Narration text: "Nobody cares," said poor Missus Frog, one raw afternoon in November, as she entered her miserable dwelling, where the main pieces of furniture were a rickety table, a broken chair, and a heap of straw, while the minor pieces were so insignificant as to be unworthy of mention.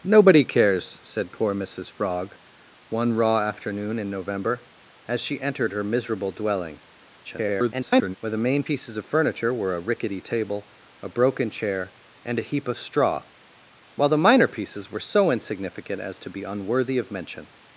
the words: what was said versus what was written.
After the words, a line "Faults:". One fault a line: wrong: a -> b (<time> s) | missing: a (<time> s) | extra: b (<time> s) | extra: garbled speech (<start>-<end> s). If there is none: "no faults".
"Nobody cares," said poor Missus Frog, one raw afternoon in November, as she entered her miserable dwelling, [garbled] where the main pieces of furniture were a rickety table, a broken chair, and a heap of straw, while the minor pieces were so insignificant as to be unworthy of mention.
Faults:
extra: garbled speech (7.2-8.2 s)